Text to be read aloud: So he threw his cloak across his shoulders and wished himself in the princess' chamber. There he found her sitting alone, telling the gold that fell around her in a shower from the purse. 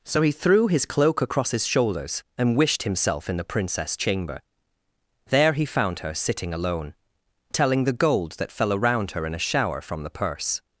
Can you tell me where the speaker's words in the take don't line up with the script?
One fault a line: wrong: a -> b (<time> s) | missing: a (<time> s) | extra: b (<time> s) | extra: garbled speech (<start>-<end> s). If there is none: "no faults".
no faults